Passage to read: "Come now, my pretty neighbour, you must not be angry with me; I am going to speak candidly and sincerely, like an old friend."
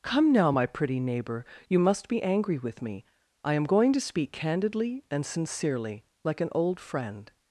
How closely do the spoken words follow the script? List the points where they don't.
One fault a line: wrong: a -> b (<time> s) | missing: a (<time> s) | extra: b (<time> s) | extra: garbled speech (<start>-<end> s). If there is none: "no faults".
missing: not (2.1 s)